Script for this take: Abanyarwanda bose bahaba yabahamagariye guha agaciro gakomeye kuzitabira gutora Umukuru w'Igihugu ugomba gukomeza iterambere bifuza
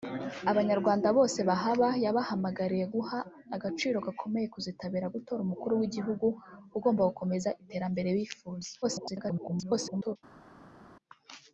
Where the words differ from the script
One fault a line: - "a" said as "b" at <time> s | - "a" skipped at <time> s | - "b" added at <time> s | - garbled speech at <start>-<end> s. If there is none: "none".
- garbled speech at 8.8-10.2 s